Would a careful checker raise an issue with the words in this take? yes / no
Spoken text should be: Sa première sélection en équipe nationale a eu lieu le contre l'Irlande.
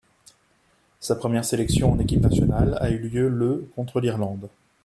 no